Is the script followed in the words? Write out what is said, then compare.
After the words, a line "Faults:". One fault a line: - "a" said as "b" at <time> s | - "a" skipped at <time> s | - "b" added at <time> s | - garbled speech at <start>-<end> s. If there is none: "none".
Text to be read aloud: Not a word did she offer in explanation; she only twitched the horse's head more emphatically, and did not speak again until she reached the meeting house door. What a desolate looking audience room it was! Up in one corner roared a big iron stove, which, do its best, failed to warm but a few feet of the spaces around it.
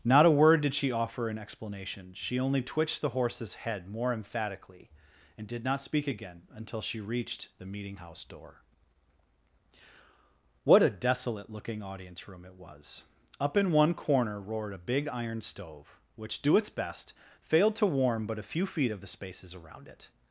Not a word did she offer in explanation; she only twitched the horse's head more emphatically, and did not speak again until she reached the meeting house door. What a desolate looking audience room it was! Up in one corner roared a big iron stove, which, do its best, failed to warm but a few feet of the spaces around it.
Faults:
none